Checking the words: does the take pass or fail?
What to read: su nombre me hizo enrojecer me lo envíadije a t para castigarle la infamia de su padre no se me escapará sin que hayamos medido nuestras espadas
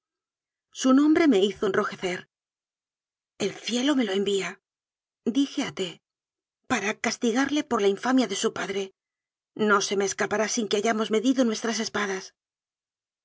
fail